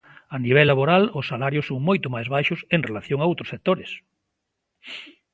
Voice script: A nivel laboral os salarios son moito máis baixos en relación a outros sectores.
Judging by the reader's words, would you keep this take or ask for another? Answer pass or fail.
pass